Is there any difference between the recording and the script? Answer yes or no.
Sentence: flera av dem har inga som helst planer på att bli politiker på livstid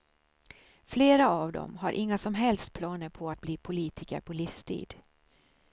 no